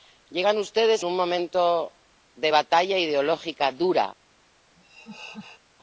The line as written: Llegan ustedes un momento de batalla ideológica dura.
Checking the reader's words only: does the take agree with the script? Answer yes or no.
yes